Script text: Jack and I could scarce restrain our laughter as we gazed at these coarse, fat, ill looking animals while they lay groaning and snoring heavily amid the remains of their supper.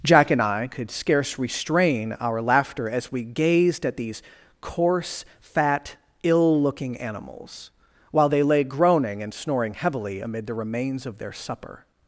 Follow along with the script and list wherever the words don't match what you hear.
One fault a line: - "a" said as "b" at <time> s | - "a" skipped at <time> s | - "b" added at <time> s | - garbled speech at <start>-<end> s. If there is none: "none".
none